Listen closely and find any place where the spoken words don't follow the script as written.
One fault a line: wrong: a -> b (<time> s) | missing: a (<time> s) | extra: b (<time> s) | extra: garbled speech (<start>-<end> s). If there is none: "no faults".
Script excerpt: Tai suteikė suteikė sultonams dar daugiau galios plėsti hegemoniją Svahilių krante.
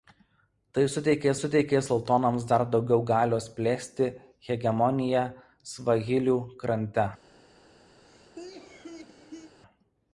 no faults